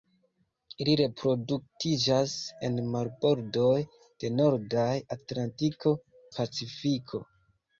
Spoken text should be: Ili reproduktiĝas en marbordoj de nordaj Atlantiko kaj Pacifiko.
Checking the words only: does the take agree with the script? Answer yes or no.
no